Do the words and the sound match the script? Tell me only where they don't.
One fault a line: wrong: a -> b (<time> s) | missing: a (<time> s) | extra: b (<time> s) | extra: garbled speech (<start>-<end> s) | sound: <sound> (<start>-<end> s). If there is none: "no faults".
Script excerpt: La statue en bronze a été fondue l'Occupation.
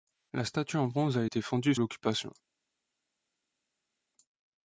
no faults